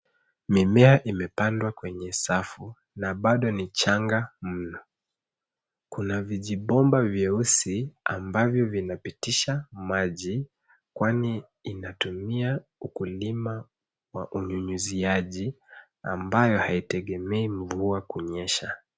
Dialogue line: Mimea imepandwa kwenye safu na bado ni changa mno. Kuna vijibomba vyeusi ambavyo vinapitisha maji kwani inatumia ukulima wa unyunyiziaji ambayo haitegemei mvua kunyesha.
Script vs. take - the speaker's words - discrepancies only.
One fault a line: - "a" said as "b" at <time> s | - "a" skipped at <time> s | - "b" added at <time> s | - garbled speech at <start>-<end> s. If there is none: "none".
none